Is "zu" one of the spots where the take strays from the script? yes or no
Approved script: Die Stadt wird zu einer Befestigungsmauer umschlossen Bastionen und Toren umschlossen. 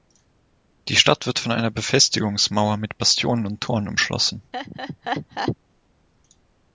yes